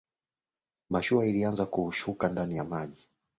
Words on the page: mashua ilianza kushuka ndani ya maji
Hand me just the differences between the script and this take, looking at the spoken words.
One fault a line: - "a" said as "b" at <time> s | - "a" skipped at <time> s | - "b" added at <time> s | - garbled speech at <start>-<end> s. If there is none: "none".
none